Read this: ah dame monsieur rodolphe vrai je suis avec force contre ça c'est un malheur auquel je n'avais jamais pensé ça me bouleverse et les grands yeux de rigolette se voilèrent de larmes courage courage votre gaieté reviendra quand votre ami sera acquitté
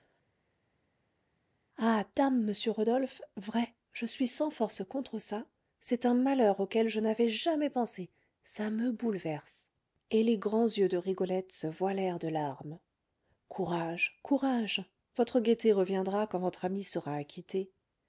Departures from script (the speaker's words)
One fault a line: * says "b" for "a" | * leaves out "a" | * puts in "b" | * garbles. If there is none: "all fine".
* says "sans" for "avec"